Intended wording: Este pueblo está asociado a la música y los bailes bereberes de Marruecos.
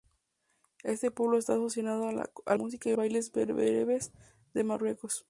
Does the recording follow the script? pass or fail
fail